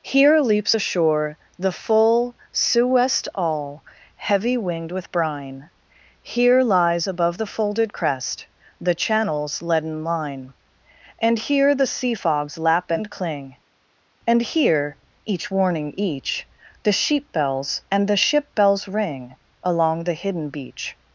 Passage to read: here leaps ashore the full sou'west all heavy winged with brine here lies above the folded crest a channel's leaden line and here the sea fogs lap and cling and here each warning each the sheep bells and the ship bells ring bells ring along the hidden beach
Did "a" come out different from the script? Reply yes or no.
yes